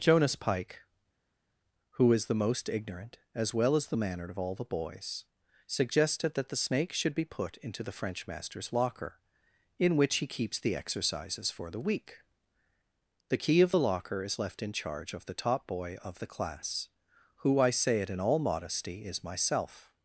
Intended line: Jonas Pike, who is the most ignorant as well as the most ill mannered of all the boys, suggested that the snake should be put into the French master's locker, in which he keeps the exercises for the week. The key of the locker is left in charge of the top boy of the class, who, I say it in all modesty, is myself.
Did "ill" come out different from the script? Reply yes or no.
yes